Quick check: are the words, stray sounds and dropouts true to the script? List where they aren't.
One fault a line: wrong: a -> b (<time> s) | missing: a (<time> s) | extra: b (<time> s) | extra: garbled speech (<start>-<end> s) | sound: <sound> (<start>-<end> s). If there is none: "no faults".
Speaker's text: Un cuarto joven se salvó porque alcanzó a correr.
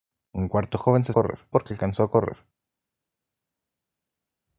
wrong: salvó -> correr (1.1 s)